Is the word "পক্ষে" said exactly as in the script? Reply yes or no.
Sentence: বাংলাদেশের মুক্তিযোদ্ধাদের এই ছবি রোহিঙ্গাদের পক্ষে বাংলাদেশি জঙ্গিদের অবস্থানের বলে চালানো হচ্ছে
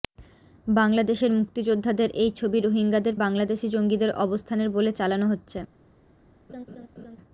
no